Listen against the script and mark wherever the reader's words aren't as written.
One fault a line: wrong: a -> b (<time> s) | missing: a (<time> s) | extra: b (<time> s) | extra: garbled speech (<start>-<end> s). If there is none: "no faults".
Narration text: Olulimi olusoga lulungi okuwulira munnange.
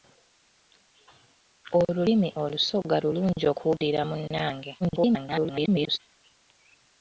extra: garbled speech (4.8-6.0 s)